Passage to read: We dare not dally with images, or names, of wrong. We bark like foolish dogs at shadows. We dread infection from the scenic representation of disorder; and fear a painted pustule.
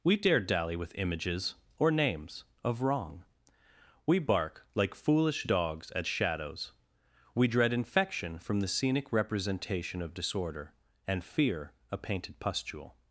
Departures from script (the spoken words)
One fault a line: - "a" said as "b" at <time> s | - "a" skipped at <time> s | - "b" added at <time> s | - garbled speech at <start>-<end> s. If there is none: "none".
- "not" skipped at 0.4 s